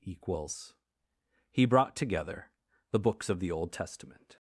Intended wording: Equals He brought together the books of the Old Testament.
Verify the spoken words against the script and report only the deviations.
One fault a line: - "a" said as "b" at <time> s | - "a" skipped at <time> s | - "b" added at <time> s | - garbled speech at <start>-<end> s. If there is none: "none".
none